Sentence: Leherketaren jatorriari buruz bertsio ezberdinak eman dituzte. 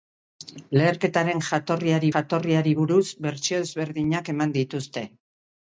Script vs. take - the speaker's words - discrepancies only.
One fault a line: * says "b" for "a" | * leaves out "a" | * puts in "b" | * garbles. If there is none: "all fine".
* puts in "jatorriari"